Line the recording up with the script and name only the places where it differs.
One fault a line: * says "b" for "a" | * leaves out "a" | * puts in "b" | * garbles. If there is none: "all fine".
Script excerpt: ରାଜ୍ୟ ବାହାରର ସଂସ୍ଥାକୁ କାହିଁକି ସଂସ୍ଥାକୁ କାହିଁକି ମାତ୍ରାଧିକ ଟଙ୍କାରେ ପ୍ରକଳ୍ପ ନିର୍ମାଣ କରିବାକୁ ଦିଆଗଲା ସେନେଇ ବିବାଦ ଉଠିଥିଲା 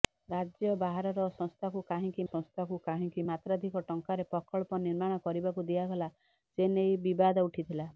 all fine